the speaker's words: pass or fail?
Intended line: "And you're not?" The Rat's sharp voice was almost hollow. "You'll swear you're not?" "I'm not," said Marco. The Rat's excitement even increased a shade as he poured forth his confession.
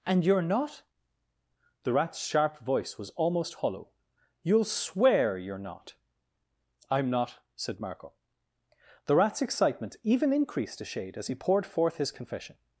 pass